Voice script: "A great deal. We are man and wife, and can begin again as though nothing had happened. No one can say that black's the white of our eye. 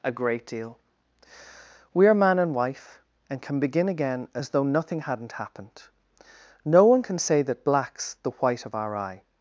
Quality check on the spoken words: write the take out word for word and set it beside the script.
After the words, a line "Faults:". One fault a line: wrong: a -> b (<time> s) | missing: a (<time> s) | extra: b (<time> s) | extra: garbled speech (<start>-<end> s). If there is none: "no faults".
"A great deal. We are man and wife, and can begin again as though nothing hadn't happened. No one can say that black's the white of our eye.
Faults:
wrong: had -> hadn't (5.0 s)